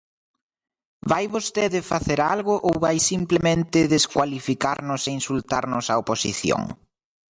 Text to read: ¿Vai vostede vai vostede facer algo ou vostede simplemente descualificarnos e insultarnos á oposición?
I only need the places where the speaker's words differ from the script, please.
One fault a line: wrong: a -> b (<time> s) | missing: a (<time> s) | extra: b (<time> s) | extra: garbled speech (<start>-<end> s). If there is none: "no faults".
missing: vai vostede (1.8 s)
wrong: vostede -> vai (2.9 s)